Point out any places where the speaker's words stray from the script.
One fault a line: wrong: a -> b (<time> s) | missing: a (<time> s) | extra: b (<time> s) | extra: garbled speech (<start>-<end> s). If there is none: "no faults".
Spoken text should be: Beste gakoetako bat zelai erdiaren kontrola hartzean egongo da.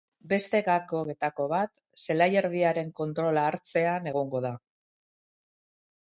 no faults